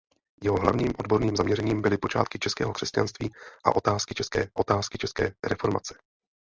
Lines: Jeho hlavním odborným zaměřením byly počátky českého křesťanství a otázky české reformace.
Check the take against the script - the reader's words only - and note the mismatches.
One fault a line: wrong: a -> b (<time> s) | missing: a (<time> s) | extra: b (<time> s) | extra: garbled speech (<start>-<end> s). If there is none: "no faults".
extra: otázky české (4.6 s)